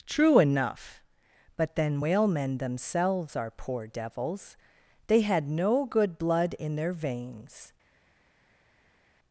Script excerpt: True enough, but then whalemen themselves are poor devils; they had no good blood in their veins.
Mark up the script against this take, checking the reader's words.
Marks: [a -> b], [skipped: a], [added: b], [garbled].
True enough, but then whalemen themselves are poor devils; they had no good blood in their veins.